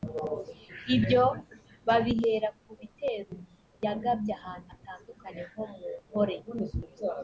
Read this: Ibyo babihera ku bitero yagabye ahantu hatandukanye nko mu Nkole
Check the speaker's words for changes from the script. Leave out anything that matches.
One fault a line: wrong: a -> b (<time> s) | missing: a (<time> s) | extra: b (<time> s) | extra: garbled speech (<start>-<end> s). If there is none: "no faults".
no faults